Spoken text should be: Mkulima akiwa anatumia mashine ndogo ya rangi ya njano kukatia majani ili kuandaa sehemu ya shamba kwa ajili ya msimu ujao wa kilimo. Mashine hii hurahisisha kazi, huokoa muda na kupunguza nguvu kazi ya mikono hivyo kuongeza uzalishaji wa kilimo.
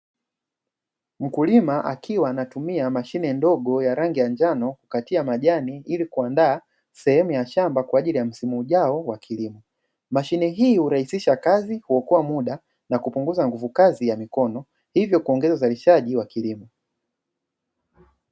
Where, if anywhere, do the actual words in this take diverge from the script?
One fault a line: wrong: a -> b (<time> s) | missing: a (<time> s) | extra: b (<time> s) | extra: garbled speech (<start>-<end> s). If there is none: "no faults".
no faults